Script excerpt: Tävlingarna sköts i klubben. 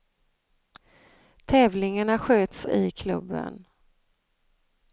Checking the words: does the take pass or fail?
pass